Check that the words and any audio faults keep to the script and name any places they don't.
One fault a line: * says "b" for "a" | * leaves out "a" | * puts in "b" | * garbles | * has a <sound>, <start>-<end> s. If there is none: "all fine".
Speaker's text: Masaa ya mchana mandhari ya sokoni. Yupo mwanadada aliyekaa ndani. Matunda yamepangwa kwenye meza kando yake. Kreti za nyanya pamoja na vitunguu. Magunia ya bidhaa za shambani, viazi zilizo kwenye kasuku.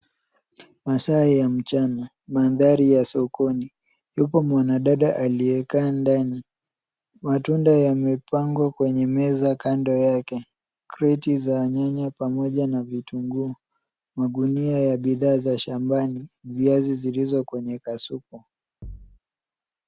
* has a thud, 18.8-19.2 s